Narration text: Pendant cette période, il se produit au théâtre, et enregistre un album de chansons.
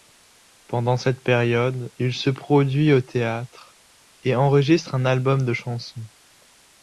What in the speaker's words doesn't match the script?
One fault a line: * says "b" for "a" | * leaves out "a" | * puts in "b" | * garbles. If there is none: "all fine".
all fine